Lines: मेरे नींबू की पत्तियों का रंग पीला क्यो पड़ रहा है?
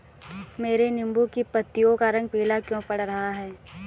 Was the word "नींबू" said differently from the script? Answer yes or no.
no